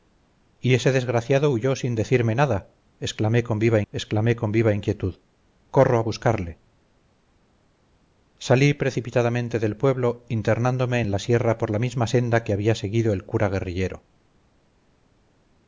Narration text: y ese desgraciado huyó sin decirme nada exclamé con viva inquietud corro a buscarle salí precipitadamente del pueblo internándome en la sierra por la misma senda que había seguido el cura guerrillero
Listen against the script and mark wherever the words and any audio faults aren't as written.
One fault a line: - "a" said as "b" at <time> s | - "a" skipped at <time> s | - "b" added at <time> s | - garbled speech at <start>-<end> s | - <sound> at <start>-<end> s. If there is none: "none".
- "exclamé con viva" added at 3.9 s